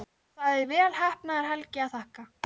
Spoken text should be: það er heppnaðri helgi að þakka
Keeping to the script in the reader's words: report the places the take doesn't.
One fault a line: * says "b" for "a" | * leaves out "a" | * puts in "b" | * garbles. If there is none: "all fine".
* puts in "vel"